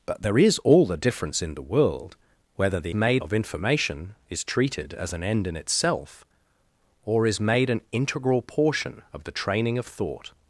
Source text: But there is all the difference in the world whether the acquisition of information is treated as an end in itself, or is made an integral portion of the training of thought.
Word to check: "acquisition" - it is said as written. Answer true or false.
false